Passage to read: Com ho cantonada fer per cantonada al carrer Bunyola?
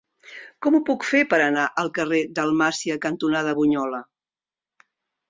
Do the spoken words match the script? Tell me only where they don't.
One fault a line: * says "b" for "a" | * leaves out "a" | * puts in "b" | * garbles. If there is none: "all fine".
* says "puc" for "cantonada"
* says "anar" for "cantonada"
* puts in "Dalmàcia cantonada"